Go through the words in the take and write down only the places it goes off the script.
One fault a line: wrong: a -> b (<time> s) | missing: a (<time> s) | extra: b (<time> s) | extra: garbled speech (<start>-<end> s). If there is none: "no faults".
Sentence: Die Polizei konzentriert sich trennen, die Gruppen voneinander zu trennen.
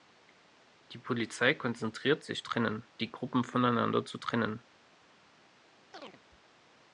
no faults